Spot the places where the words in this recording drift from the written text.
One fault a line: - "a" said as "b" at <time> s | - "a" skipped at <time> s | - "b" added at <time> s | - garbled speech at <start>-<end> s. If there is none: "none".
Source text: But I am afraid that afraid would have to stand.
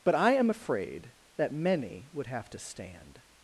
- "afraid" said as "many" at 1.5 s